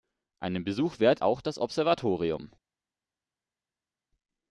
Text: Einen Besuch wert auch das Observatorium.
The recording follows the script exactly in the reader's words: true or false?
true